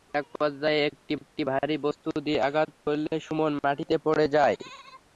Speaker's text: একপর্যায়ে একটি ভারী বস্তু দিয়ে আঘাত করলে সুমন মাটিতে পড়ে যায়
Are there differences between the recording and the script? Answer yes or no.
yes